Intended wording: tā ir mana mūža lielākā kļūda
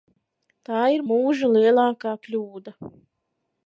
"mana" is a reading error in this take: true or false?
true